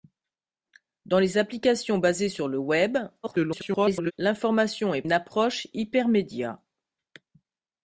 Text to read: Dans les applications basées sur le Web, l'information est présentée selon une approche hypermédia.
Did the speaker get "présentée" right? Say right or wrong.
wrong